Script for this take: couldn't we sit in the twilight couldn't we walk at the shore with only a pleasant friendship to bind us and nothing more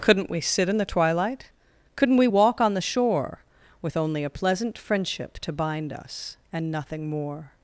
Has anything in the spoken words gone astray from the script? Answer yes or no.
yes